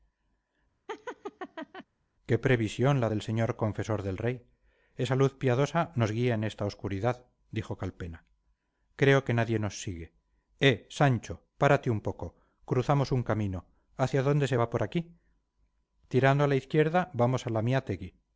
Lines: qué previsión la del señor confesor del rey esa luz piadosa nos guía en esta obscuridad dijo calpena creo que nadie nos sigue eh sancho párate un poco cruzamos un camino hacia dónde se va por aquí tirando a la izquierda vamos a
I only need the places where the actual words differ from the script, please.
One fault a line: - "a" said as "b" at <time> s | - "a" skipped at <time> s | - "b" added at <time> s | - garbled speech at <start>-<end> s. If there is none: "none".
none